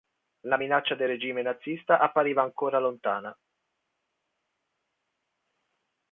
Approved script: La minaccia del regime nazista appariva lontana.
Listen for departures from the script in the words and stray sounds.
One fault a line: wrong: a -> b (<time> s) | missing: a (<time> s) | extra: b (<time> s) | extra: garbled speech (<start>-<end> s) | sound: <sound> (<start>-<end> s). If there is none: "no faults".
extra: ancora (2.4 s)